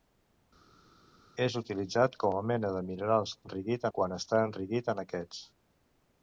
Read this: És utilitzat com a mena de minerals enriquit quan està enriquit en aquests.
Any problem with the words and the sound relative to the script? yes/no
no